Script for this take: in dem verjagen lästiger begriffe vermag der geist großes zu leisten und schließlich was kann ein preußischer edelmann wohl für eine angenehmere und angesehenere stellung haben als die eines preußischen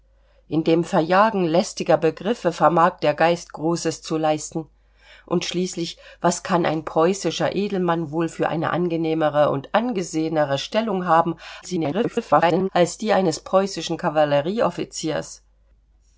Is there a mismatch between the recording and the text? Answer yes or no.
yes